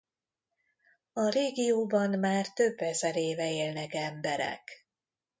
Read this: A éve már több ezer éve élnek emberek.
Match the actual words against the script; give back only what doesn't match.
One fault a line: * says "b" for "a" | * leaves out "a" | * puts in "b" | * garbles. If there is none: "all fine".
* says "régióban" for "éve"